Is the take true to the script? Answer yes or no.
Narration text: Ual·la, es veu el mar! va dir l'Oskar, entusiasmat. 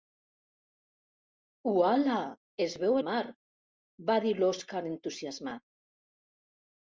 no